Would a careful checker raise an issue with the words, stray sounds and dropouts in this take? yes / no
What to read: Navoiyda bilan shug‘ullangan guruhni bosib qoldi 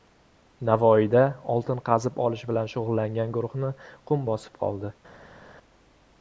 yes